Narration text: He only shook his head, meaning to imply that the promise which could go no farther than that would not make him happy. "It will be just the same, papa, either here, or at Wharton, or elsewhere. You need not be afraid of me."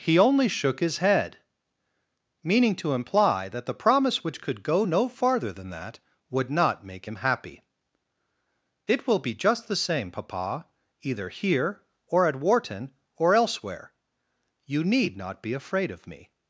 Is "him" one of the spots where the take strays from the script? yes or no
no